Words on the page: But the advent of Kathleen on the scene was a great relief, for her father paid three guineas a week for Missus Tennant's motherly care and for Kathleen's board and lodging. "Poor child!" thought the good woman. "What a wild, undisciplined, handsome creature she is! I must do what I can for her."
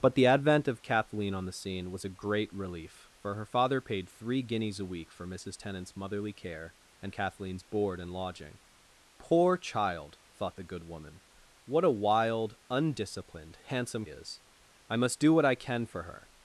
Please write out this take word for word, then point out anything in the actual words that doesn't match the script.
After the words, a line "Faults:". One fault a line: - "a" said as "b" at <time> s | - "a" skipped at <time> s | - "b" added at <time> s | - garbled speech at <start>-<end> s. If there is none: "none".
But the advent of Kathleen on the scene was a great relief, for her father paid three guineas a week for Missus Tennant's motherly care and Kathleen's board and lodging. "Poor child!" thought the good woman. "What a wild, undisciplined, handsome is! I must do what I can for her."
Faults:
- "for" skipped at 7.1 s
- "creature she" skipped at 14.0 s